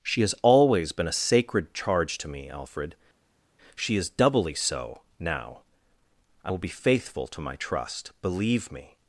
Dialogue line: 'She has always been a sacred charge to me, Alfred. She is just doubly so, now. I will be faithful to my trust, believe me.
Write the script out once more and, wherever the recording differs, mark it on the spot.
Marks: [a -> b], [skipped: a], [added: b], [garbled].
'She has always been a sacred charge to me, Alfred. She is [skipped: just] doubly so, now. I will be faithful to my trust, believe me.